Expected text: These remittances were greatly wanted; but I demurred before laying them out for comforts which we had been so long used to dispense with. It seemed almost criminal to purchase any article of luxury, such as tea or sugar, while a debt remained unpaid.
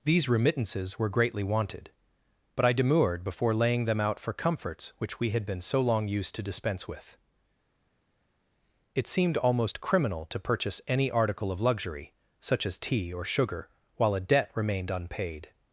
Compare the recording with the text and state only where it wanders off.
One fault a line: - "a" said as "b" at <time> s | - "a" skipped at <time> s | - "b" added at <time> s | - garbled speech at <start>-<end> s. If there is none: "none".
none